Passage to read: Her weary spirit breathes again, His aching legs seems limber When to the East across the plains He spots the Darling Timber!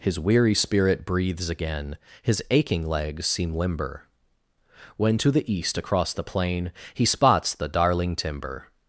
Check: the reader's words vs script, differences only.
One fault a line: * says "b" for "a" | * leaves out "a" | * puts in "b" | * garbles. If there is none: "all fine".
* says "His" for "Her"
* says "seem" for "seems"
* says "plain" for "plains"